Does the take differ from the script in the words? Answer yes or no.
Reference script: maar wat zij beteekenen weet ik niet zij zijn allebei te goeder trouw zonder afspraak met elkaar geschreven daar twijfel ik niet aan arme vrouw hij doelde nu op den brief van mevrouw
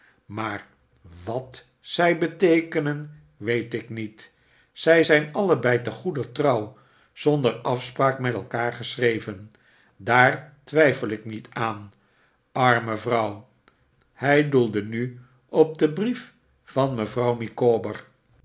no